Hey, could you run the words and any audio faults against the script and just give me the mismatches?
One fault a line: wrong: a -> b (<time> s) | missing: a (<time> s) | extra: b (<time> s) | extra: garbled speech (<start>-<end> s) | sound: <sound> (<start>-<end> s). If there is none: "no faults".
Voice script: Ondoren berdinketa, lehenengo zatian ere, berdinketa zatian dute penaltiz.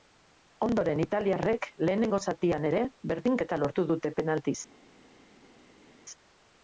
wrong: berdinketa -> italiarrek (1.0 s)
wrong: zatian -> lortu (3.6 s)